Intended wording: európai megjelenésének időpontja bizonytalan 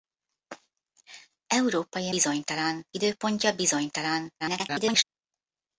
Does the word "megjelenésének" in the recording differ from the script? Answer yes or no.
yes